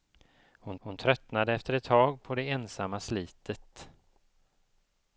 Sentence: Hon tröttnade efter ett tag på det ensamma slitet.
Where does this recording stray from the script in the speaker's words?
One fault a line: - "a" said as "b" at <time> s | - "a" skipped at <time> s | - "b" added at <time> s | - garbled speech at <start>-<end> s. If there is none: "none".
- "hon" added at 0.8 s